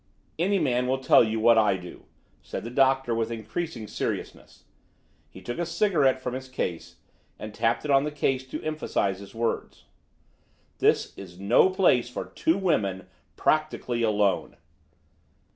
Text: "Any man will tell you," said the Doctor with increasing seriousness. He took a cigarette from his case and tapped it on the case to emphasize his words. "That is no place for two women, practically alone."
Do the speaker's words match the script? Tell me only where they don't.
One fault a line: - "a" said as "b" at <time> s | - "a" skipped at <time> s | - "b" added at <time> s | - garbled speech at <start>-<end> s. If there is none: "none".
- "what I do" added at 1.4 s
- "That" said as "This" at 10.8 s